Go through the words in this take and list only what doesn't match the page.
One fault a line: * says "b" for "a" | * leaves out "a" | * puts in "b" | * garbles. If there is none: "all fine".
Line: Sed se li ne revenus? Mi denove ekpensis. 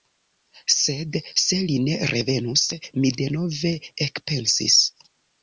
all fine